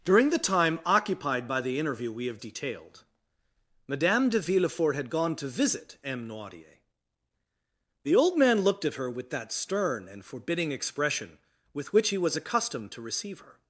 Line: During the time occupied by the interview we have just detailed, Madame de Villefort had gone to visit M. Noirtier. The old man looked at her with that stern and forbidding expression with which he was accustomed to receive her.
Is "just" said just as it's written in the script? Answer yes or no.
no